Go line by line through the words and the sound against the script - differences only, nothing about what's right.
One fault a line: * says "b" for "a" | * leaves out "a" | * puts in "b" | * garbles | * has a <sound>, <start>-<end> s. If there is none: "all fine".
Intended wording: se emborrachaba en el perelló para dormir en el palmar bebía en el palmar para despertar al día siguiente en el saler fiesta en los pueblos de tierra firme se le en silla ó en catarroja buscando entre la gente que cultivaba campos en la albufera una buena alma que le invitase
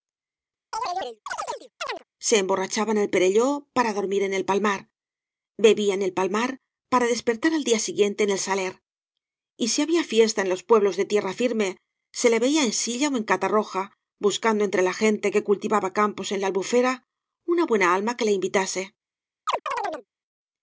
* has a chirp, 0.7-2.0 s
* puts in "y si había"
* puts in "veía"
* has a chirp, 19.5-20.1 s